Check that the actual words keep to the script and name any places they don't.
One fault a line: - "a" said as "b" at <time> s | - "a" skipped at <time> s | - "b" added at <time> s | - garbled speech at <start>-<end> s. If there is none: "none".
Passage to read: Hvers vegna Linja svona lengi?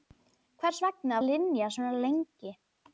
none